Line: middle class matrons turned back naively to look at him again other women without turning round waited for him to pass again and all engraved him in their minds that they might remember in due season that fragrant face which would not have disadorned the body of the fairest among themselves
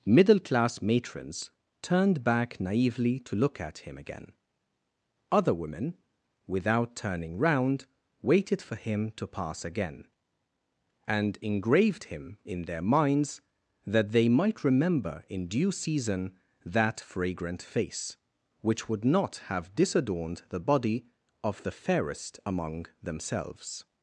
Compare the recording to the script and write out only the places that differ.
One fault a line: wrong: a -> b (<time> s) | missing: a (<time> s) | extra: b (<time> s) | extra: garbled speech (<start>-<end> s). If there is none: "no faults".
missing: all (11.4 s)